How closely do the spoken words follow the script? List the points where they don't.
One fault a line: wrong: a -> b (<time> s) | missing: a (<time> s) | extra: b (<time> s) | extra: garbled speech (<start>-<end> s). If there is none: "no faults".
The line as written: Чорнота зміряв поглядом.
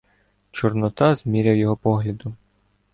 extra: його (1.6 s)